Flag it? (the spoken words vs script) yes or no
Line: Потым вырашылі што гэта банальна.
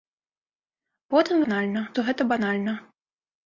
yes